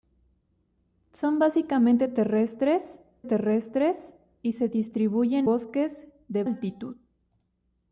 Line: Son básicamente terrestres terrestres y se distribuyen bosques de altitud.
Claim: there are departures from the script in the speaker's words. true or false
false